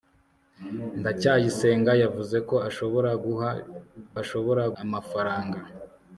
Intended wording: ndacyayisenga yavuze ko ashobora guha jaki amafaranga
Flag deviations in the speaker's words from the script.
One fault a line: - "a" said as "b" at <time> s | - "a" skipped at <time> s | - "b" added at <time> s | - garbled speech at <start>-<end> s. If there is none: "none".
- "jaki" said as "ashobora" at 4.2 s